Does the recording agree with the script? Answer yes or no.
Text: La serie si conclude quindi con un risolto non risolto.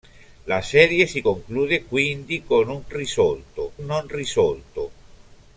yes